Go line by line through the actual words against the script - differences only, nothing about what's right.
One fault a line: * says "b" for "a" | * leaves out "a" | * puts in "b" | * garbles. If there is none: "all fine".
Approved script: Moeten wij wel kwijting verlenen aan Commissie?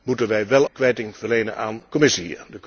all fine